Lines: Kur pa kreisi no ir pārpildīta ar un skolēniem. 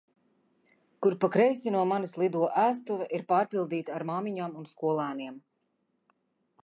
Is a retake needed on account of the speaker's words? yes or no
yes